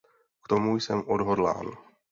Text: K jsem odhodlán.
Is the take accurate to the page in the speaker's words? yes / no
no